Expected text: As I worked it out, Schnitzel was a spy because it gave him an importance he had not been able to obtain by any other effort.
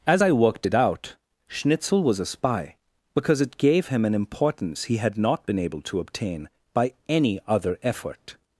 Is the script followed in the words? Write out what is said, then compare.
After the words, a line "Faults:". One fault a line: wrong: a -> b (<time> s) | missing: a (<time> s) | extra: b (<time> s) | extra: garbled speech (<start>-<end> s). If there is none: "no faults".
As I worked it out, Schnitzel was a spy because it gave him an importance he had not been able to obtain by any other effort.
Faults:
no faults